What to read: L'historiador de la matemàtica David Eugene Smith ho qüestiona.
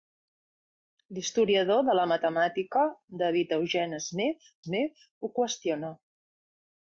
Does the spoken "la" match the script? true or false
true